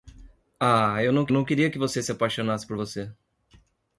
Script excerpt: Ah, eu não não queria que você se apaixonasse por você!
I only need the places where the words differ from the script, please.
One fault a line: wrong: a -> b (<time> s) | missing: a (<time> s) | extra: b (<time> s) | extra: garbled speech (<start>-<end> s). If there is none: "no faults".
no faults